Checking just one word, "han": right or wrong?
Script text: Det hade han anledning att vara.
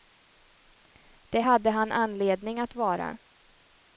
right